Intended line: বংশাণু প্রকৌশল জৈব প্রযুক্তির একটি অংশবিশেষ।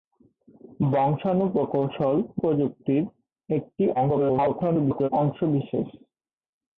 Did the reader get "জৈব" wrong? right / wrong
wrong